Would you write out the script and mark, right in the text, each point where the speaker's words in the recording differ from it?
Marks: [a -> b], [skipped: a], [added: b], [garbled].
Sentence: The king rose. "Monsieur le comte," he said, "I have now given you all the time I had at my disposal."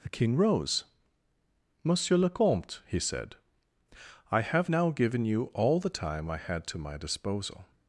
The king rose. "Monsieur le comte," he said, "I have now given you all the time I had [at -> to] my disposal."